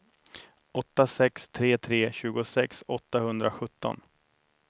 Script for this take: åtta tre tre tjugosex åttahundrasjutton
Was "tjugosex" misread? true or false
false